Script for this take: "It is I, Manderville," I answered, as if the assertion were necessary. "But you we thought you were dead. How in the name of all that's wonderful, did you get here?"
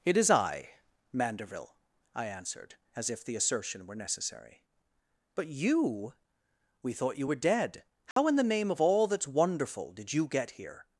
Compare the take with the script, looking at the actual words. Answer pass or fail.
pass